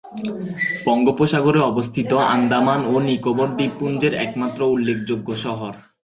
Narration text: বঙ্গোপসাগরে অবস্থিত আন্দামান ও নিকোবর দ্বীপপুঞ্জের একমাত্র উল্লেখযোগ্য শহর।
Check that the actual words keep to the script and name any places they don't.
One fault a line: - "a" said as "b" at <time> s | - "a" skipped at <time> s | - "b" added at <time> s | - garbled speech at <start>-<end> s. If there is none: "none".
none